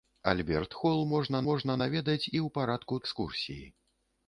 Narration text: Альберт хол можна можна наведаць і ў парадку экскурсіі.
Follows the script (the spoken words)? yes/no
yes